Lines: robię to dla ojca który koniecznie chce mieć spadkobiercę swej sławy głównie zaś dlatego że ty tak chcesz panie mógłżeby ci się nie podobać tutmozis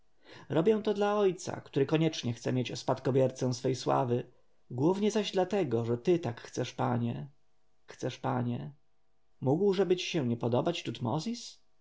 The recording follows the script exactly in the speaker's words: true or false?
false